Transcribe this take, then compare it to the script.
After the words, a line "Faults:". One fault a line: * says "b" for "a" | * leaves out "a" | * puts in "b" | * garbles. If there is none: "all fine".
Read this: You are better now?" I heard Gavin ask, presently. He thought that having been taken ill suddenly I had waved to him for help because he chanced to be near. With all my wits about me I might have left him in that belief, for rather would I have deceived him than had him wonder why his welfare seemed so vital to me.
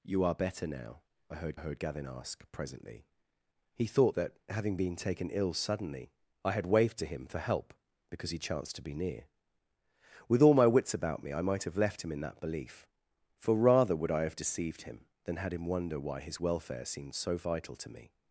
You are better now?" I heard heard Gavin ask, presently. He thought that having been taken ill suddenly I had waved to him for help because he chanced to be near. With all my wits about me I might have left him in that belief, for rather would I have deceived him than had him wonder why his welfare seemed so vital to me.
Faults:
* puts in "heard"